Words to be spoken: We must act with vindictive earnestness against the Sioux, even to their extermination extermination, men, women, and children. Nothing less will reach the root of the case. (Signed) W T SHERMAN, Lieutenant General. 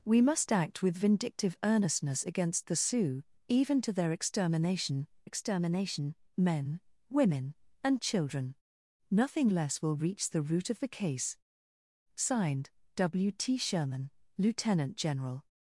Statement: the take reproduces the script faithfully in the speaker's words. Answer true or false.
true